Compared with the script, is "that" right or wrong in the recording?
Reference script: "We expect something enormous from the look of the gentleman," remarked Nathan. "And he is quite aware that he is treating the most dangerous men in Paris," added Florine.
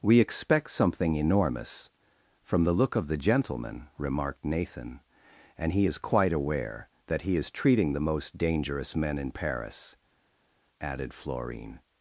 right